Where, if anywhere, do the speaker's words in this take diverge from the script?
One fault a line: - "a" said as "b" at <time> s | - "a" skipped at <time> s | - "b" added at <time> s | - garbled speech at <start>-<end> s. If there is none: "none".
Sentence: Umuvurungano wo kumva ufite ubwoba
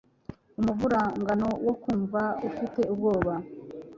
none